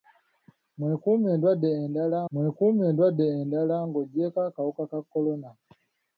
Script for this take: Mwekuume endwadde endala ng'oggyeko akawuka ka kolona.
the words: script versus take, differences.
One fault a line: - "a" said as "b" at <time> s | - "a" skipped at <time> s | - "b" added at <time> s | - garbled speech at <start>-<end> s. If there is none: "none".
- "mwekuume endwadde endala" added at 2.3 s